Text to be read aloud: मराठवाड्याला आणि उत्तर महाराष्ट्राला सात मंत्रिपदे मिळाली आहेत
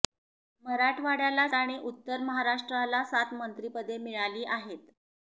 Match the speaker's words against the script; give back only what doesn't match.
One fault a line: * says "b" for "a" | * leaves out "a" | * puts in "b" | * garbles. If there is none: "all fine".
all fine